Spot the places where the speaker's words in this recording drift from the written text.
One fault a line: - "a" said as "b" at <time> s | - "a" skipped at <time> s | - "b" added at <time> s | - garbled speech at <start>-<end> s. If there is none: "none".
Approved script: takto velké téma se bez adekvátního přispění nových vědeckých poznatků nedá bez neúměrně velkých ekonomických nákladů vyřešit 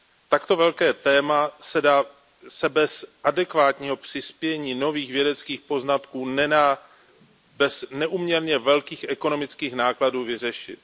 none